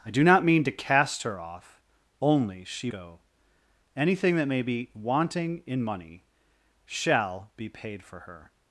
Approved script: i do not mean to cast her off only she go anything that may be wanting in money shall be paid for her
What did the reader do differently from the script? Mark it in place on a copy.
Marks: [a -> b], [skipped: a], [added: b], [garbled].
i do not mean to cast her off only she go anything that may be wanting in money shall be paid for her